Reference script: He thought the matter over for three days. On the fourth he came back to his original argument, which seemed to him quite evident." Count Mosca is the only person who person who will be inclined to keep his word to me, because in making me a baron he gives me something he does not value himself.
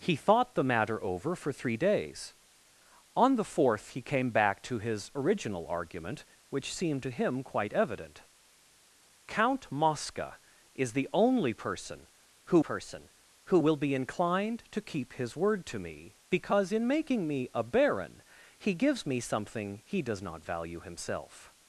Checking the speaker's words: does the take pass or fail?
pass